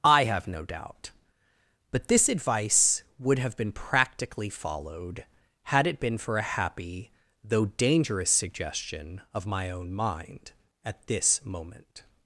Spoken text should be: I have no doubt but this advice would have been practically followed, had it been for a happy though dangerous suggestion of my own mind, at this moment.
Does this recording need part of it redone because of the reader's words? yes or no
no